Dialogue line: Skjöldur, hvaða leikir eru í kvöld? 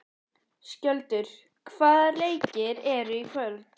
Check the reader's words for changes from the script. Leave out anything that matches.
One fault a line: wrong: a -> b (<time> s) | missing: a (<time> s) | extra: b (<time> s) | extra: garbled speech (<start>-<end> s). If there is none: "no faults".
no faults